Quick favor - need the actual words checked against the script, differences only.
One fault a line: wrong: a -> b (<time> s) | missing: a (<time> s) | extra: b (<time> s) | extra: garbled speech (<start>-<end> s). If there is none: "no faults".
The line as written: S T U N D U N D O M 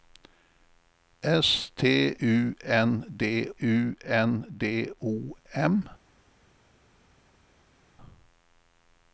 no faults